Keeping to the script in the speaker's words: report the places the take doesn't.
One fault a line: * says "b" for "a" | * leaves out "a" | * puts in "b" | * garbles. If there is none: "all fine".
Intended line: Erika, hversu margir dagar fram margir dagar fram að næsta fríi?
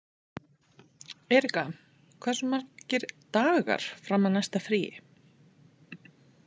* leaves out "margir dagar fram"